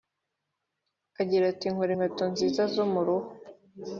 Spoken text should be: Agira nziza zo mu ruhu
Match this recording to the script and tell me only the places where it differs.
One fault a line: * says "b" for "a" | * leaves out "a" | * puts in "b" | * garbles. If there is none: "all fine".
* puts in "ati Nkora inkweto"